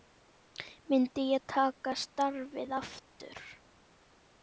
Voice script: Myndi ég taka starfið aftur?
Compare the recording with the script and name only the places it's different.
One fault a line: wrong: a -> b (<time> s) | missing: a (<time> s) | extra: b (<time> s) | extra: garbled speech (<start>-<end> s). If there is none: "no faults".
no faults